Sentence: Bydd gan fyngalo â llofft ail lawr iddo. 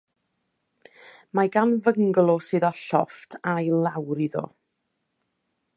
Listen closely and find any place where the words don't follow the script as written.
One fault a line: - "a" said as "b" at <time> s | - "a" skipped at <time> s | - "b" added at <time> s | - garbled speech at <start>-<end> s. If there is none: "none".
- "Bydd" said as "Mae" at 1.4 s
- "sydd" added at 2.5 s